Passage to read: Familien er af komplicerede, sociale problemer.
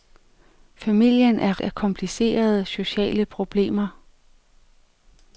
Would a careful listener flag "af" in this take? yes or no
no